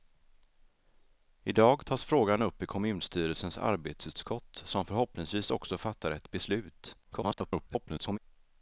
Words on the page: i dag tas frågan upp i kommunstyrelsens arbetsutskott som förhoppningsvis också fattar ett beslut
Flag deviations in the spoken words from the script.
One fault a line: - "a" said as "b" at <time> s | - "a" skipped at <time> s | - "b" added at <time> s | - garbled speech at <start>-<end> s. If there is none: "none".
- garbled speech at 7.0-8.2 s